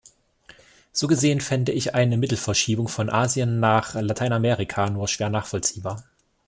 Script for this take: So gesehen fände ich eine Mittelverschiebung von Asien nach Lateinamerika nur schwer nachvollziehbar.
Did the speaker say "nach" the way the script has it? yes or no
yes